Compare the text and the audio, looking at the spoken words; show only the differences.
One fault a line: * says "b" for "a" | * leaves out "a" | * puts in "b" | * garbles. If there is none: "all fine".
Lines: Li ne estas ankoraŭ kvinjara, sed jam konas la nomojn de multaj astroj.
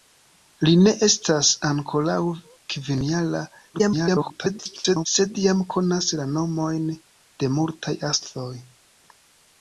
* garbles